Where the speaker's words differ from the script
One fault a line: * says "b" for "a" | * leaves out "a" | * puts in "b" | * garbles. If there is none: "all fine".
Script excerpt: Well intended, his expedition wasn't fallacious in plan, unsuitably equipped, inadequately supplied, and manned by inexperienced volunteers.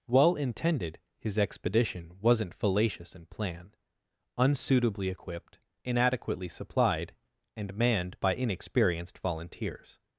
all fine